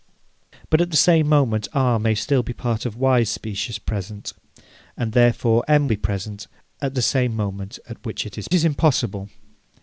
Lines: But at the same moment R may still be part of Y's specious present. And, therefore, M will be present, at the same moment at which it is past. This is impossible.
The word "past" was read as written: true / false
false